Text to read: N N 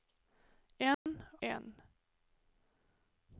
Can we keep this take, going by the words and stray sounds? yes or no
no